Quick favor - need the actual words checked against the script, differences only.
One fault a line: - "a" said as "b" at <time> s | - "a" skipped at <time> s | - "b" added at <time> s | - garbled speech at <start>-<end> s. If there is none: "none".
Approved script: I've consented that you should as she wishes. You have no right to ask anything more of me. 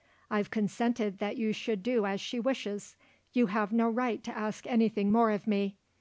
- "do" added at 1.8 s